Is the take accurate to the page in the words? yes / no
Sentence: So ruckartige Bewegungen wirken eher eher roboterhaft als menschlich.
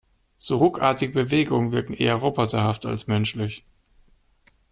no